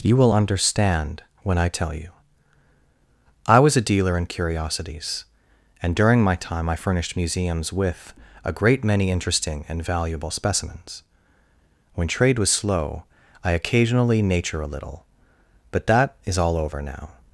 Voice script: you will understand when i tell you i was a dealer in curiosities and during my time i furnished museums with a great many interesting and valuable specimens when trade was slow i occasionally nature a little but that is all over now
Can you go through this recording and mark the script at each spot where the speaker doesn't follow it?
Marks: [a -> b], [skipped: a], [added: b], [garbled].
you will understand when i tell you i was a dealer in curiosities and during my time i furnished museums with a great many interesting and valuable specimens when trade was slow i occasionally nature a little but that is all over now